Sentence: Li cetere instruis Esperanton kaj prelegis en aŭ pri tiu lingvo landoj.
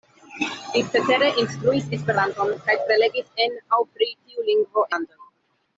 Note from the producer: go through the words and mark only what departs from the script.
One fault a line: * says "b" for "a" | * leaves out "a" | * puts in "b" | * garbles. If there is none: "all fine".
all fine